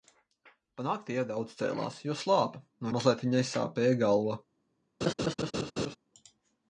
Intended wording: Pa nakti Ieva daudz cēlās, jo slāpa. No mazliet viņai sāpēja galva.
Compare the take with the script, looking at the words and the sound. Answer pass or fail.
fail